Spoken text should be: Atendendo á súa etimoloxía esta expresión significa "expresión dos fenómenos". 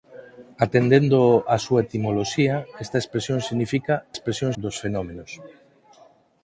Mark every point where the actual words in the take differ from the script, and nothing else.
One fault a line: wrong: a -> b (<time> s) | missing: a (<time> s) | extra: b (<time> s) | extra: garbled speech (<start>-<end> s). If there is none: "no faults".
no faults